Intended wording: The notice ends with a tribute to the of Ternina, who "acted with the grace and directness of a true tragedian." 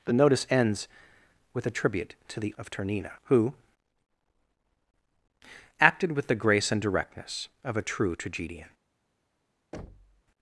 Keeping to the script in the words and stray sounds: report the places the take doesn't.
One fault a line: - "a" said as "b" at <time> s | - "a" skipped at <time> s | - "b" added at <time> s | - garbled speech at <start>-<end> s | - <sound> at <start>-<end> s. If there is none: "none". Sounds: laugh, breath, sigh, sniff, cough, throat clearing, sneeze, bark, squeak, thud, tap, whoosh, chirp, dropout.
- thud at 9.7-10.2 s